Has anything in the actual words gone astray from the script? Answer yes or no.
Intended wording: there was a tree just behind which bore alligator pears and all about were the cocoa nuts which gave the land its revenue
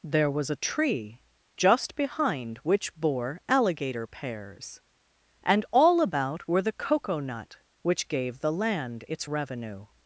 yes